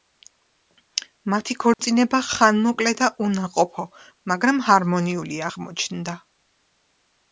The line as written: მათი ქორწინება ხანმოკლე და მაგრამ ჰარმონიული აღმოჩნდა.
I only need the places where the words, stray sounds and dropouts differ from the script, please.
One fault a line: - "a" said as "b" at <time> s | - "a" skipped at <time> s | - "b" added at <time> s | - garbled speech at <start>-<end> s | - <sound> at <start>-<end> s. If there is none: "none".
- dropout at 1.7-1.8 s
- "უნაყოფო" added at 3.3 s